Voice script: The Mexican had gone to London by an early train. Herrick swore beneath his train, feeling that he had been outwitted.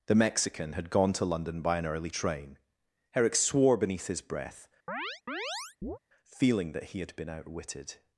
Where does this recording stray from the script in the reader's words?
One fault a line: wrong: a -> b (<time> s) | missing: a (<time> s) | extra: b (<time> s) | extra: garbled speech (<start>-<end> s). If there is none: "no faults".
wrong: train -> breath (4.2 s)